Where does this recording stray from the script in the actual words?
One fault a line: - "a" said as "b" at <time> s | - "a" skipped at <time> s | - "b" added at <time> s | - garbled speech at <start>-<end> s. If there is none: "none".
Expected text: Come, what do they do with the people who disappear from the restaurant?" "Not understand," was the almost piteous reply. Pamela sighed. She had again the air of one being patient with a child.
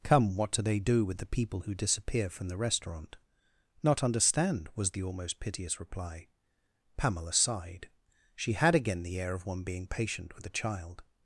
none